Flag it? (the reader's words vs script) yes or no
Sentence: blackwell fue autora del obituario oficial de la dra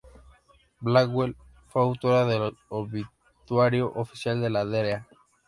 no